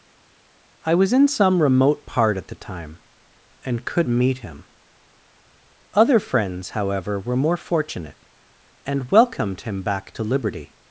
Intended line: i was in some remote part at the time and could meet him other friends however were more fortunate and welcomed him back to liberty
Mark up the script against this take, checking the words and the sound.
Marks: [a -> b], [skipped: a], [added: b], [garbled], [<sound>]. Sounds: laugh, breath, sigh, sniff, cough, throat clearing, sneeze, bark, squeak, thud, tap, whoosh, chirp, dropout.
i was in some remote part at the time and could meet him other friends however were more fortunate and welcomed him back to liberty